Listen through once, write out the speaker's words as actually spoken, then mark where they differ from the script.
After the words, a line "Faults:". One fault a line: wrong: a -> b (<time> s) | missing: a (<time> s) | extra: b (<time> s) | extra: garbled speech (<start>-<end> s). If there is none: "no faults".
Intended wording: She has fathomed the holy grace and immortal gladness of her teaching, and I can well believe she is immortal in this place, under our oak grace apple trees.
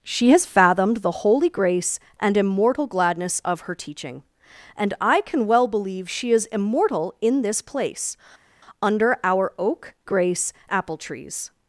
She has fathomed the holy grace and immortal gladness of her teaching, and I can well believe she is immortal in this place, under our oak grace apple trees.
Faults:
no faults